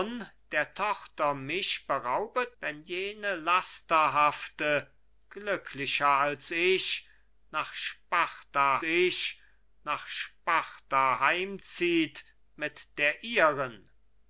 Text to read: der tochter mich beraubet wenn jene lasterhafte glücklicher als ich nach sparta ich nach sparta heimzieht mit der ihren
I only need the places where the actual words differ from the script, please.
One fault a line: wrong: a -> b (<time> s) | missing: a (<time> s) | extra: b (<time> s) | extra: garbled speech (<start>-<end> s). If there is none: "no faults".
no faults